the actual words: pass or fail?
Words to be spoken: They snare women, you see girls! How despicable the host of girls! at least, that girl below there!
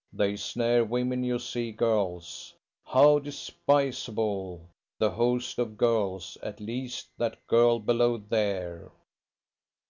pass